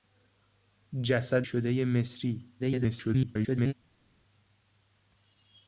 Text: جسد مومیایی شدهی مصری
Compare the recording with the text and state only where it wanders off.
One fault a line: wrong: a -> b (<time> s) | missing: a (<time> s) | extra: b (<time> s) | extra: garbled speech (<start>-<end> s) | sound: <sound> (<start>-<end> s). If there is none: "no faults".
missing: مومیایی (1.5 s)
extra: garbled speech (2.6-3.7 s)